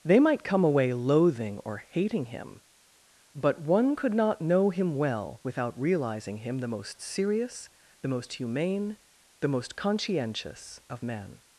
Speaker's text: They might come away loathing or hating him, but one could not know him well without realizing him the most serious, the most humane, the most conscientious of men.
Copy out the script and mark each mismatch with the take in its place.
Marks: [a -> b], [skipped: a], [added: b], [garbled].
They might come away loathing or hating him, but one could not know him well without realizing him the most serious, the most humane, the most conscientious of men.